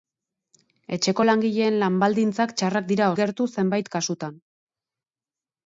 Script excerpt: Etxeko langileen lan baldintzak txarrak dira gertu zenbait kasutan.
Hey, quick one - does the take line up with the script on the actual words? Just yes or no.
yes